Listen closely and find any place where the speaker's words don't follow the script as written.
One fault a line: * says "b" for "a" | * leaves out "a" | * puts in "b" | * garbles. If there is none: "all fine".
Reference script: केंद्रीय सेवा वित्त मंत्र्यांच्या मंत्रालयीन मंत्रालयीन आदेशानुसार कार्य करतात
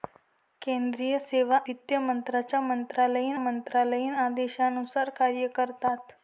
all fine